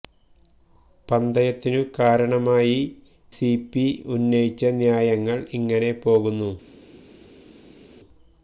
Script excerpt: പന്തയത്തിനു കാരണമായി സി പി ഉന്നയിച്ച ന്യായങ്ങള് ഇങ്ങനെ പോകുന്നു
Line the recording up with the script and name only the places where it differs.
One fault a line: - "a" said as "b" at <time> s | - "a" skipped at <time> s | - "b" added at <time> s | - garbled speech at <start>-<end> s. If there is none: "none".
none